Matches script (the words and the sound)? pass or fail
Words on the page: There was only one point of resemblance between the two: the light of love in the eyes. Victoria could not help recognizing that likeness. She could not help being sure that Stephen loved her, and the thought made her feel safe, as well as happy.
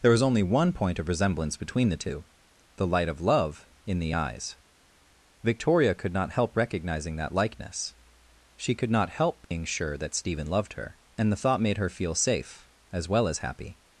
fail